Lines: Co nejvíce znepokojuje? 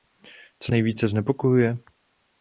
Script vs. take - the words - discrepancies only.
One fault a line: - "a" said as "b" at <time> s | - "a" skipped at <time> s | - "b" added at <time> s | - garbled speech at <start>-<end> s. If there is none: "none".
none